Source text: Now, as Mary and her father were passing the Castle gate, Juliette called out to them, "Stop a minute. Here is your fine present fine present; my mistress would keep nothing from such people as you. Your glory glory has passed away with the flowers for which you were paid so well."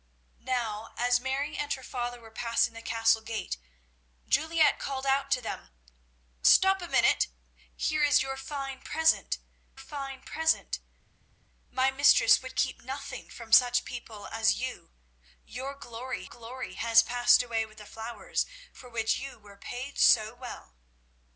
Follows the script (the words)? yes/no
yes